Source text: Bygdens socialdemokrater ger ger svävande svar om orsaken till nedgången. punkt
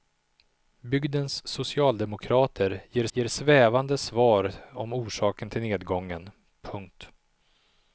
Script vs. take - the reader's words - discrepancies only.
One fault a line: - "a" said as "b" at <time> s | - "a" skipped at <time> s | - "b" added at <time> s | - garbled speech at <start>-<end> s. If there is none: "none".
none